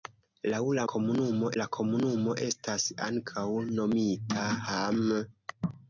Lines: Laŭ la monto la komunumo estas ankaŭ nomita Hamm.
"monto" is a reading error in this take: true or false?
true